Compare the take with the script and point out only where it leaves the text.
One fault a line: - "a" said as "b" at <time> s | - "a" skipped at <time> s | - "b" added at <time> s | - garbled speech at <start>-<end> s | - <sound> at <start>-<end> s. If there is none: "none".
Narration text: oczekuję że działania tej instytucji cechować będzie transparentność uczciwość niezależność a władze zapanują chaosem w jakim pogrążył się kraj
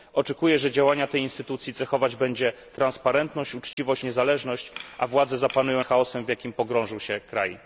- dropout at 3.7-3.8 s